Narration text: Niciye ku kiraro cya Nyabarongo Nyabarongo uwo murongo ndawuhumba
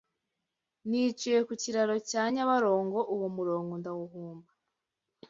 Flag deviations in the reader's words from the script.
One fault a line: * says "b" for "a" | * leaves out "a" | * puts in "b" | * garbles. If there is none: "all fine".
* leaves out "Nyabarongo"